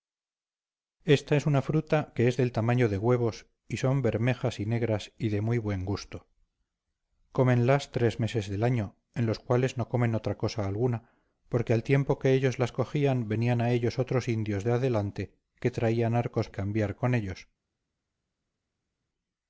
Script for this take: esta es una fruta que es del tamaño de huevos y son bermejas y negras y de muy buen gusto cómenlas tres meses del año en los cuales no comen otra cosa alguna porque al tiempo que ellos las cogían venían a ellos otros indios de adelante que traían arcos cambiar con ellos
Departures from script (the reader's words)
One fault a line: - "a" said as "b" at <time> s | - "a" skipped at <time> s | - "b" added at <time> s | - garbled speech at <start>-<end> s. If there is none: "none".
none